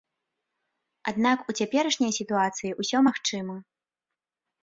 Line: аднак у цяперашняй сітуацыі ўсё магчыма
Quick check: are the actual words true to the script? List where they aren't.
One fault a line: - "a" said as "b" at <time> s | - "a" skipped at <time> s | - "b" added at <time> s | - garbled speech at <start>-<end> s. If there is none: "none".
none